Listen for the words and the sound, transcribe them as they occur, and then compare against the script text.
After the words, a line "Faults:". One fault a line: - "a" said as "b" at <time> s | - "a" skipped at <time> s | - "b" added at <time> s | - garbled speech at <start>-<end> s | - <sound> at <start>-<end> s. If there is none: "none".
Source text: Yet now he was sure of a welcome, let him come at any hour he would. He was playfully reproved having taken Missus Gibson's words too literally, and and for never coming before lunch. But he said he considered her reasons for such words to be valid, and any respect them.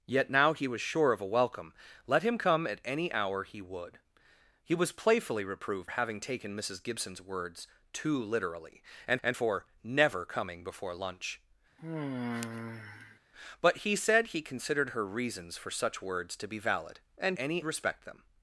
Yet now he was sure of a welcome, let him come at any hour he would. He was playfully reproved having taken Missus Gibson's words too literally, and and for never coming before lunch. But he said he considered her reasons for such words to be valid, and any respect them.
Faults:
- sigh at 11.8-13.2 s